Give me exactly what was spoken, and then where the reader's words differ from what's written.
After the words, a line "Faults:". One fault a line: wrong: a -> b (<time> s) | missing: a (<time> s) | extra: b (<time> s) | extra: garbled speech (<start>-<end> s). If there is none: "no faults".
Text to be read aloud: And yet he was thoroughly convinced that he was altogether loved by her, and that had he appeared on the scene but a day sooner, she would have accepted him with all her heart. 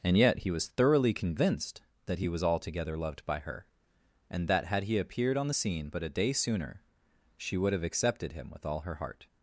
And yet he was thoroughly convinced that he was altogether loved by her, and that had he appeared on the scene but a day sooner, she would have accepted him with all her heart.
Faults:
no faults